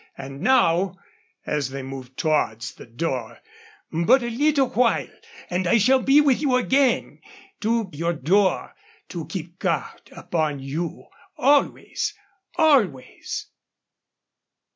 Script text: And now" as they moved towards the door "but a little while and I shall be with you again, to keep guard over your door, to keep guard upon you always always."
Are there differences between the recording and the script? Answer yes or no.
yes